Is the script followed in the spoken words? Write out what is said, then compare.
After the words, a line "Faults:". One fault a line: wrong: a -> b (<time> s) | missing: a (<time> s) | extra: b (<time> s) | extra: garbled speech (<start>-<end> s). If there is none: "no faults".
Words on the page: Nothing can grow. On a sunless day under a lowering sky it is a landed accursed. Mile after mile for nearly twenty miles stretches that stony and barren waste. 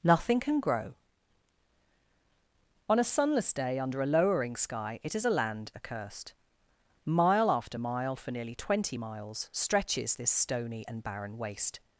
Nothing can grow. On a sunless day under a lowering sky it is a land accursed. Mile after mile for nearly twenty miles stretches this stony and barren waste.
Faults:
wrong: landed -> land (5.3 s)
wrong: that -> this (10.1 s)